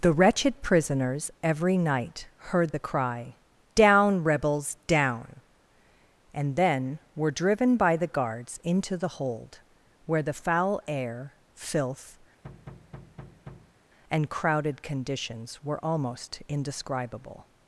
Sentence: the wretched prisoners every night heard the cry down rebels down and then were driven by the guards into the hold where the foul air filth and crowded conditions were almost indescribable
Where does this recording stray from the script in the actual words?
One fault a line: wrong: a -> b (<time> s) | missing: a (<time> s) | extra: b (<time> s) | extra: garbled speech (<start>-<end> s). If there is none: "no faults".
no faults